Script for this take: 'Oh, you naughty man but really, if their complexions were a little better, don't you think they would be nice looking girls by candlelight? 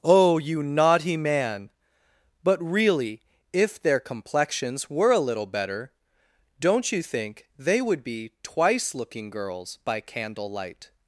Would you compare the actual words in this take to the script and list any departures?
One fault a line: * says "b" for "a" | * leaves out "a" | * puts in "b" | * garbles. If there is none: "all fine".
* says "twice" for "nice"